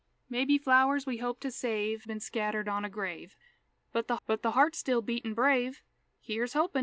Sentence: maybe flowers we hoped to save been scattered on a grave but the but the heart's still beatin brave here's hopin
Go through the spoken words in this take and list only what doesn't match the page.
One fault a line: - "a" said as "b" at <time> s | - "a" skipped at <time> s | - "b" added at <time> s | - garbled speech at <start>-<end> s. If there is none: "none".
none